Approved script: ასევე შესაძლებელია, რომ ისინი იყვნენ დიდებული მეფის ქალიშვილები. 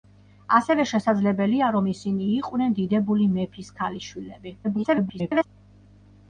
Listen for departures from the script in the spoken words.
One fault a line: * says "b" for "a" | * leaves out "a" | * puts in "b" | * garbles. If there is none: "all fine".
* garbles